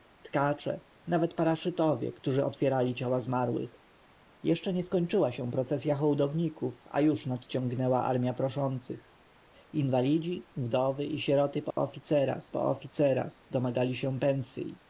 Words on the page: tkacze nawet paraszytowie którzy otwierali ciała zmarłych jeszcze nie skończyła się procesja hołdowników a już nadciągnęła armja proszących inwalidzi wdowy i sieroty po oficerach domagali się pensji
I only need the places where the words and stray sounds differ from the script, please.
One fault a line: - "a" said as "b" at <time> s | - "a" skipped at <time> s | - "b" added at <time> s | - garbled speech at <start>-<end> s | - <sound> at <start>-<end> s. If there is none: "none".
- dropout at 11.7-11.8 s
- "po oficerach" added at 12.5 s